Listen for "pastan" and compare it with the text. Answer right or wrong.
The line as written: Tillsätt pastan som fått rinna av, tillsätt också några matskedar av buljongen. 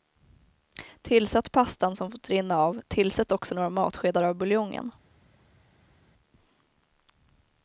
right